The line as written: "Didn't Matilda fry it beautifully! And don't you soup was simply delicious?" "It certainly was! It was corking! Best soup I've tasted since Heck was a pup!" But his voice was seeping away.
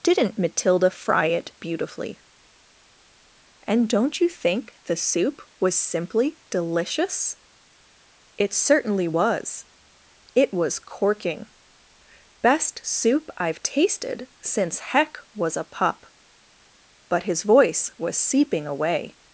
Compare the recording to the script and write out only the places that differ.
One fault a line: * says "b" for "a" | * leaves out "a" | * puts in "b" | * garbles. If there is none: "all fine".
* puts in "think the"